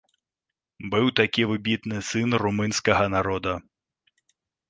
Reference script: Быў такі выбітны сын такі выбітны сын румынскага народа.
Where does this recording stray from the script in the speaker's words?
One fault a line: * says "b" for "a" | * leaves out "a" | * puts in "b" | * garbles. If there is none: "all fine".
* leaves out "такі выбітны сын"